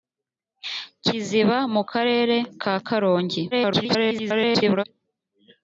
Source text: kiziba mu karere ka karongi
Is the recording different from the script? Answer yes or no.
yes